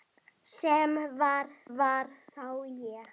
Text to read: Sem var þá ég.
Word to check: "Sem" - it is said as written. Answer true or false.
true